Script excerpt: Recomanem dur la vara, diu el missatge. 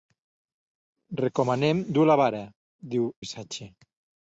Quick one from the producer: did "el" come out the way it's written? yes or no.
no